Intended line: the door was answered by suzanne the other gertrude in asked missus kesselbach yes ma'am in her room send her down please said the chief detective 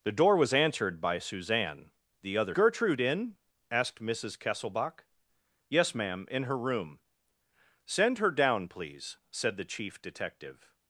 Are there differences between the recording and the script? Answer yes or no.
no